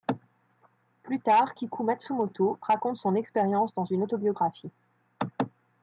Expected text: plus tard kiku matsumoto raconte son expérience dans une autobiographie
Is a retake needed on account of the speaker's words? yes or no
no